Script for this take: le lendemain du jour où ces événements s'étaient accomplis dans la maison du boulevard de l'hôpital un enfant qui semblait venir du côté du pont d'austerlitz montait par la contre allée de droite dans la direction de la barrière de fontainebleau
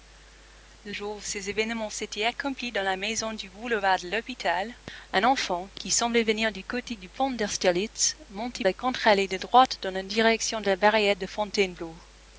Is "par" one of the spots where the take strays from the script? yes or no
yes